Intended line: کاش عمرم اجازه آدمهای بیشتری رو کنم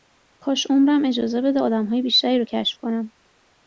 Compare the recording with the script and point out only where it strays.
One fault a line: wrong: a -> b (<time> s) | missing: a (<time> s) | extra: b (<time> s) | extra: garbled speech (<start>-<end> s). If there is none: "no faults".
extra: بده (1.4 s)
extra: کشف (2.4 s)